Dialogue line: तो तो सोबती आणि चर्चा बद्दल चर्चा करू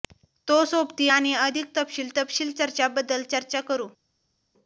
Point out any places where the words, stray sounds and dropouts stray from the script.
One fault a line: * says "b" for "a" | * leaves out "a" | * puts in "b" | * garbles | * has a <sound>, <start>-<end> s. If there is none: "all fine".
* leaves out "तो"
* puts in "अधिक तपशील तपशील"